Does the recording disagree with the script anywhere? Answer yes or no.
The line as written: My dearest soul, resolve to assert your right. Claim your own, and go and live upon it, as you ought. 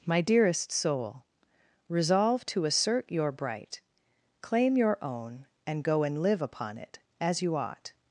yes